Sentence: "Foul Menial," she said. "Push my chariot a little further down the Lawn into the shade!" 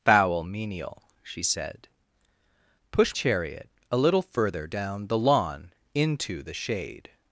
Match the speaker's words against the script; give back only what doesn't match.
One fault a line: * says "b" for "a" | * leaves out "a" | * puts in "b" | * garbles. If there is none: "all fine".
* leaves out "my"